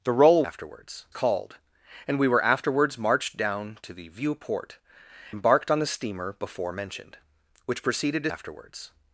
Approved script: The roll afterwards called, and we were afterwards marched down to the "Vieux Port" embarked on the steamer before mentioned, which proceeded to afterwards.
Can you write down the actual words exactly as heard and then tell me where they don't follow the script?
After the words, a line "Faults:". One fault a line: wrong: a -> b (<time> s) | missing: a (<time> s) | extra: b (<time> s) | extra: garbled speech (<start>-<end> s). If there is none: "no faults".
The roll afterwards called, and we were afterwards marched down to the "Vieux Port" embarked on the steamer before mentioned, which proceeded to afterwards.
Faults:
no faults